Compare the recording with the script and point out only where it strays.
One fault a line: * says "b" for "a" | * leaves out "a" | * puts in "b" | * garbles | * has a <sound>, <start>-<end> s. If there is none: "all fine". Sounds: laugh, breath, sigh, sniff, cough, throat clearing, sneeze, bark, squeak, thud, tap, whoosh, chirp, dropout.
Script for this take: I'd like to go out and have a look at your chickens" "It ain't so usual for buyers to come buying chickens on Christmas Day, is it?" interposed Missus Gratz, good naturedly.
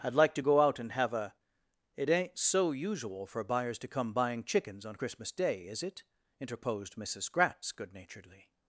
* leaves out "look at your chickens"